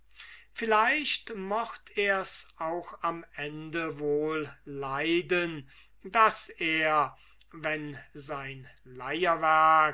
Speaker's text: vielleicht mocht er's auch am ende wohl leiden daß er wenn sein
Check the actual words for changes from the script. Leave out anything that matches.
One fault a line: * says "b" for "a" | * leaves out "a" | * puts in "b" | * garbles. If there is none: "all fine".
all fine